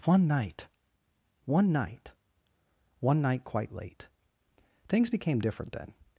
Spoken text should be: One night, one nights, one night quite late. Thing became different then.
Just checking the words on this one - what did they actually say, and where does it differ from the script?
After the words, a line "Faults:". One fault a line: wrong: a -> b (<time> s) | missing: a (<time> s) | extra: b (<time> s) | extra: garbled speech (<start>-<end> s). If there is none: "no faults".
One night, one night, one night quite late. Things became different then.
Faults:
wrong: nights -> night (1.7 s)
wrong: Thing -> Things (4.9 s)